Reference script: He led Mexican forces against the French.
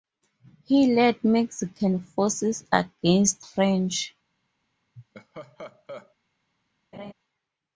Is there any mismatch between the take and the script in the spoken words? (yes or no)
yes